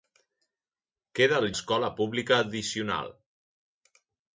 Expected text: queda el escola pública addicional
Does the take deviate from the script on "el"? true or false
false